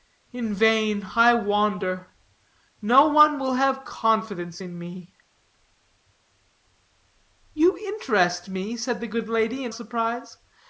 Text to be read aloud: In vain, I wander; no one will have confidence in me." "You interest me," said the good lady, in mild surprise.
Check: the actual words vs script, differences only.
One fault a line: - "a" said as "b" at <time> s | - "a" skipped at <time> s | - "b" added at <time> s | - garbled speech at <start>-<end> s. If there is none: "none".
- "mild" skipped at 9.7 s